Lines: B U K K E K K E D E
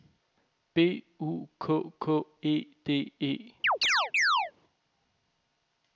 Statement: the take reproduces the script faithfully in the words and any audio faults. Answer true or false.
false